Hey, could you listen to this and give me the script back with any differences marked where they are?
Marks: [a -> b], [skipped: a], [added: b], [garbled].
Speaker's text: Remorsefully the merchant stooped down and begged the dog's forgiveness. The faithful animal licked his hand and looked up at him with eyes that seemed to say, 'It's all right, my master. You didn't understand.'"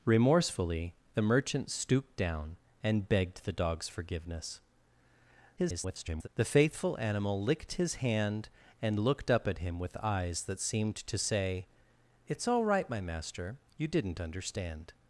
Remorsefully the merchant stooped down and begged the dog's forgiveness. [garbled] The faithful animal licked his hand and looked up at him with eyes that seemed to say, 'It's all right, my master. You didn't understand.'"